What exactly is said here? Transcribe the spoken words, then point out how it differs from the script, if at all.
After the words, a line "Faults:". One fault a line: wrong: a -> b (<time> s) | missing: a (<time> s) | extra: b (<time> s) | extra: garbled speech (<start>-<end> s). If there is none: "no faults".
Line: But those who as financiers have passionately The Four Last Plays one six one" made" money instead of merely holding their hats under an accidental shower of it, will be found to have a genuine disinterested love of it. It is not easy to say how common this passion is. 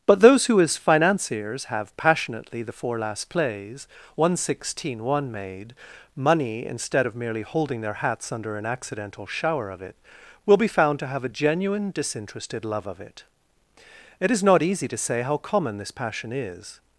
But those who as financiers have passionately The Four Last Plays one sixteen one" made" money instead of merely holding their hats under an accidental shower of it, will be found to have a genuine disinterested love of it. It is not easy to say how common this passion is.
Faults:
wrong: six -> sixteen (4.4 s)